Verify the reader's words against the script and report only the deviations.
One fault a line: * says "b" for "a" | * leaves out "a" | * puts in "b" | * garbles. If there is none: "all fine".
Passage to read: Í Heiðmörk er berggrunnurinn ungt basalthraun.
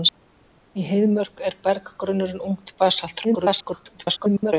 * garbles